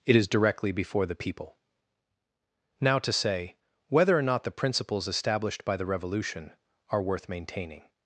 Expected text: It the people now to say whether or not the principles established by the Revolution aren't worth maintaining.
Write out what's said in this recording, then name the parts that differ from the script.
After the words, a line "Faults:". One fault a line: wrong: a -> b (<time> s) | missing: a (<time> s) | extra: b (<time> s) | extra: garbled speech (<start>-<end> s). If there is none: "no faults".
It is directly before the people now to say whether or not the principles established by the Revolution are worth maintaining.
Faults:
extra: is directly before (0.1 s)
wrong: aren't -> are (6.9 s)